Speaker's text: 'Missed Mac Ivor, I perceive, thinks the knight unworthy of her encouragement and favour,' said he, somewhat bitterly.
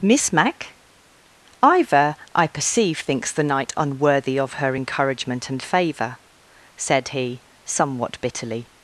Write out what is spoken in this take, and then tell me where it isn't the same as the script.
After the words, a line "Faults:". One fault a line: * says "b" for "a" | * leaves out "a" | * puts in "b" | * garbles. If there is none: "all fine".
'Miss Mac Ivor, I perceive, thinks the knight unworthy of her encouragement and favour,' said he, somewhat bitterly.
Faults:
* says "Miss" for "Missed"